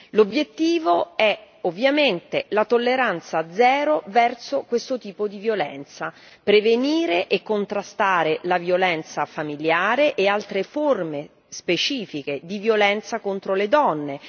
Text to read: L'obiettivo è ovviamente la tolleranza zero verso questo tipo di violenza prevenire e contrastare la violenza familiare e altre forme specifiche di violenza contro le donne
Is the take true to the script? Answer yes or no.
yes